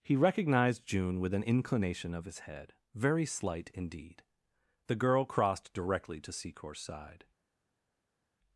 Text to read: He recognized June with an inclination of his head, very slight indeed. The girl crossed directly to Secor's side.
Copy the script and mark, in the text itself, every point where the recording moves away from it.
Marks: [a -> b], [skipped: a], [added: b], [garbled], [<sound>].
He recognized June with an inclination of his head, very slight indeed. The girl crossed directly to Secor's side.